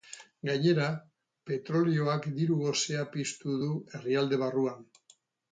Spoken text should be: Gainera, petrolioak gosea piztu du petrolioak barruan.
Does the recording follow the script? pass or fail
fail